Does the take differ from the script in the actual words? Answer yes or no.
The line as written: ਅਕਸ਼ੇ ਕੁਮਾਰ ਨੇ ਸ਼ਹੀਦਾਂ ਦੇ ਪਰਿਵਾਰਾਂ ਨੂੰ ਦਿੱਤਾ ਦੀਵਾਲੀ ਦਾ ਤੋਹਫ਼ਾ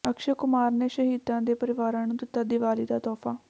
no